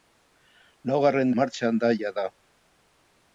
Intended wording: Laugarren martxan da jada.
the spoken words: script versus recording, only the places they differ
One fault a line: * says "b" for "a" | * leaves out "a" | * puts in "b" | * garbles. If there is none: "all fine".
all fine